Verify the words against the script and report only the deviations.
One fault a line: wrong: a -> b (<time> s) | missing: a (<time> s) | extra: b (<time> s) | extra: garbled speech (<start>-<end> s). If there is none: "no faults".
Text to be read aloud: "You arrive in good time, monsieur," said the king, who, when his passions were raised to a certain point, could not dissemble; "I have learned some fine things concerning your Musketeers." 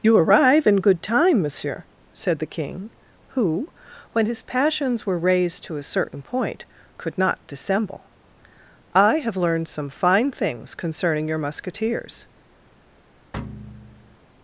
no faults